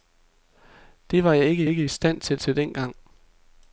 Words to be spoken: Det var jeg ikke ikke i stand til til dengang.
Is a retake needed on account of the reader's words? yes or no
no